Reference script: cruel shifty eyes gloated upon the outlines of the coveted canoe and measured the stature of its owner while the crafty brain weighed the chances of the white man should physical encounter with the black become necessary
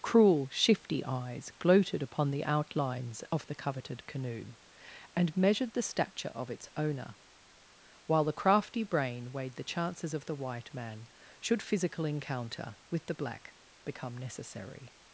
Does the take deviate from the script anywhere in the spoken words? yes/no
no